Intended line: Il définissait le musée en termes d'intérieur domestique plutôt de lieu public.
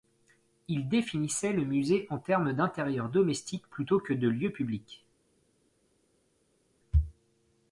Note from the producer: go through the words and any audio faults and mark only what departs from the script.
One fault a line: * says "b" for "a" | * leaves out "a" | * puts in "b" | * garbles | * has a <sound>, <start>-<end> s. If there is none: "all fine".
* puts in "que"